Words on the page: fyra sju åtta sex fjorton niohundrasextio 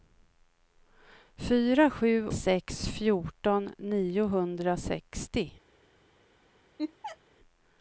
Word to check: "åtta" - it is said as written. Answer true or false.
false